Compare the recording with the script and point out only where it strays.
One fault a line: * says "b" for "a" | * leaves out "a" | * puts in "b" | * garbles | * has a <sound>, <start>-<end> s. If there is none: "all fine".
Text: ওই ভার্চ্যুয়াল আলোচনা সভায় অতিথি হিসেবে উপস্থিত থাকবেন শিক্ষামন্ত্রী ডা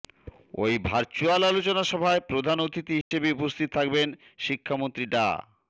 * puts in "প্রধান"
* has a dropout, 3.0-3.1 s